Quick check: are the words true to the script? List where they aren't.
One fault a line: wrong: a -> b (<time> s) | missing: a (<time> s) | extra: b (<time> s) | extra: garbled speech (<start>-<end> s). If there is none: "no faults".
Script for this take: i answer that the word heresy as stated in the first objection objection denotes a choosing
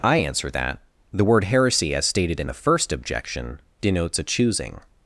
missing: objection (3.6 s)